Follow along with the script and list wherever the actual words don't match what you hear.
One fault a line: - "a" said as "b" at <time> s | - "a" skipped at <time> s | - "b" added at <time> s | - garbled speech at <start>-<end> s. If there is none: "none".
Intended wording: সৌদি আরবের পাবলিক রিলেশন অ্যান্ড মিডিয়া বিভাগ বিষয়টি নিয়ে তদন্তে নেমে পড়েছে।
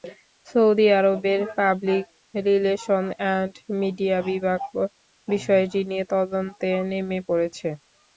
none